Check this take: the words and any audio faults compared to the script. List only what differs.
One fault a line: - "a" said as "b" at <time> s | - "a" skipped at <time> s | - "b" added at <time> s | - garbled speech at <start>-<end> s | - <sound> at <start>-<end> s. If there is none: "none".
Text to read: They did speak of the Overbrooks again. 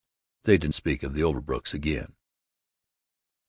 none